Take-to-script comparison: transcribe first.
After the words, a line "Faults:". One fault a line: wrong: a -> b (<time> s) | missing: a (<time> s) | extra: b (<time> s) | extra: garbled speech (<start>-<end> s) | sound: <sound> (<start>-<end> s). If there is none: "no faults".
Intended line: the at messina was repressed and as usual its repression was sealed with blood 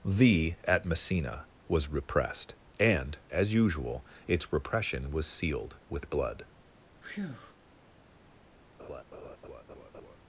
the at messina was repressed and as usual its repression was sealed with blood
Faults:
sound: breath (7.0-7.5 s)
sound: laugh (8.8-10.2 s)